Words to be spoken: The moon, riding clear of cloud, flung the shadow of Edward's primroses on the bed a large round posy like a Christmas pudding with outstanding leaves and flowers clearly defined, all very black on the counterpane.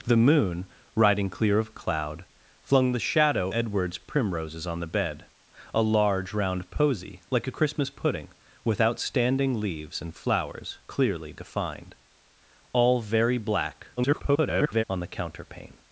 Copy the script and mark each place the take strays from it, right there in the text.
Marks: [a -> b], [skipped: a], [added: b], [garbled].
The moon, riding clear of cloud, flung the shadow [skipped: of] Edward's primroses on the bed a large round posy like a Christmas pudding with outstanding leaves and flowers clearly defined, all very black [garbled] on the counterpane.